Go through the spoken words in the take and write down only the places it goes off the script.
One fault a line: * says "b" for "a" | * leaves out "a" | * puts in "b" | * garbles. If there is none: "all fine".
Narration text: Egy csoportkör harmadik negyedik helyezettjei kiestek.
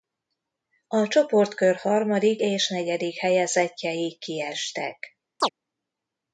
* says "A" for "Egy"
* puts in "és"